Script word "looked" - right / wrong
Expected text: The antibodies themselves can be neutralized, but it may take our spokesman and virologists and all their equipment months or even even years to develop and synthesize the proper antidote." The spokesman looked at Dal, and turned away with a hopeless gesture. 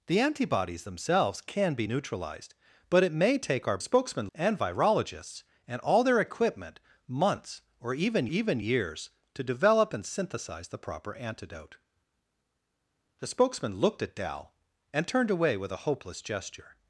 right